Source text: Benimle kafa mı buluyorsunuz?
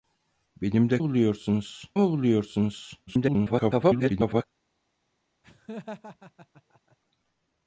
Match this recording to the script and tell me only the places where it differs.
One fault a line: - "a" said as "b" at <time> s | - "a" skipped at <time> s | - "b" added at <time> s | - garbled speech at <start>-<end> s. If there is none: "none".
- "kafa" said as "buluyorsunuz" at 1.0 s
- garbled speech at 3.1-4.4 s